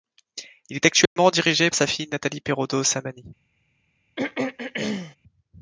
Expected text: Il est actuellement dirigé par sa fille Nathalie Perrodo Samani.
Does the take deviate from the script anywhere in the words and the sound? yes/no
yes